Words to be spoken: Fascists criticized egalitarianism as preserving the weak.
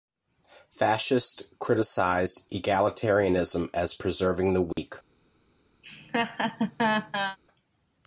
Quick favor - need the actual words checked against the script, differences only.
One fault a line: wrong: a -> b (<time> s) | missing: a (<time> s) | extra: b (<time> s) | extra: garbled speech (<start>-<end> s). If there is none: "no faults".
no faults